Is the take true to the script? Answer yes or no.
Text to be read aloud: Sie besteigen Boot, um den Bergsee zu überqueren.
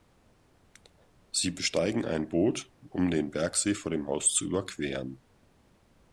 no